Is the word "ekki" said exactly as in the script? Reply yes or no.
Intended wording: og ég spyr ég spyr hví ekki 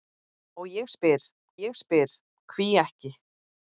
yes